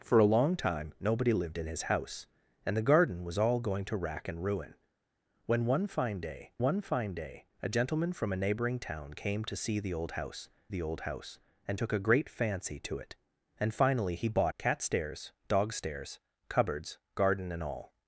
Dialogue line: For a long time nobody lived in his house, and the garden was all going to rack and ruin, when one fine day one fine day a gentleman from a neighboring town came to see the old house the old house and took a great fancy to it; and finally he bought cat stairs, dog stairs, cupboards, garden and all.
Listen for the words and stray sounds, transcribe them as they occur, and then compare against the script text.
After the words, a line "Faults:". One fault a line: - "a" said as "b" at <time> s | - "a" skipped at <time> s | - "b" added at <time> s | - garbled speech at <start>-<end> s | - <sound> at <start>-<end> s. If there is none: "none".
For a long time nobody lived in his house, and the garden was all going to rack and ruin, when one fine day one fine day a gentleman from a neighboring town came to see the old house the old house and took a great fancy to it; and finally he bought cat stairs, dog stairs, cupboards, garden and all.
Faults:
none